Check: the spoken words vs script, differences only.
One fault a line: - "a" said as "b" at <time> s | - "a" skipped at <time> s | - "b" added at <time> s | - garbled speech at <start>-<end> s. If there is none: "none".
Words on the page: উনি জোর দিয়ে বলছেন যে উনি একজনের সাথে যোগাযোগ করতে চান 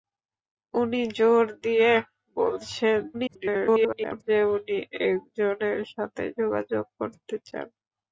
- garbled speech at 3.1-4.2 s